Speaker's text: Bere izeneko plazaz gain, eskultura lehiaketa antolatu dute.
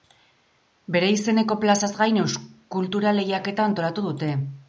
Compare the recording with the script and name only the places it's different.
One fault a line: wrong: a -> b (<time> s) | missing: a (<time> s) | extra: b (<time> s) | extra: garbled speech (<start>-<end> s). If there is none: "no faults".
no faults